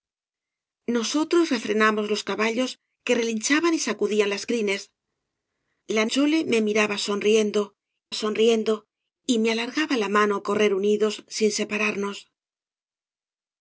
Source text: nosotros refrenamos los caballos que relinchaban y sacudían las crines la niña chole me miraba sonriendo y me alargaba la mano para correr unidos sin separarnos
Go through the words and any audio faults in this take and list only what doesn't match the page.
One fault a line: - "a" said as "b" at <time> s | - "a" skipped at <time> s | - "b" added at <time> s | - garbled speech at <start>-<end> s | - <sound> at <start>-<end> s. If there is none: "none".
- "niña" skipped at 6.0 s
- "sonriendo" added at 8.1 s
- "para" skipped at 10.4 s